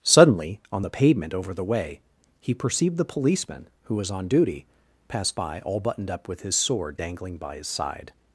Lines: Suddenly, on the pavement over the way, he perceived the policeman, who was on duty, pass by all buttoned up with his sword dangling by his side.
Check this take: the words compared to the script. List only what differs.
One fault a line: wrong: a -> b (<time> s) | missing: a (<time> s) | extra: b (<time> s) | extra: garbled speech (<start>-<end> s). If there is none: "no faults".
no faults